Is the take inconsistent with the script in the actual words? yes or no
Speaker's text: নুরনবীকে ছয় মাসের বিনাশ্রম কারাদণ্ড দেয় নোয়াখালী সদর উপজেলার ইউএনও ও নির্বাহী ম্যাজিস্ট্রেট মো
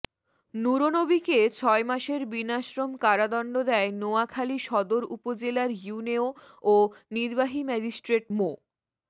no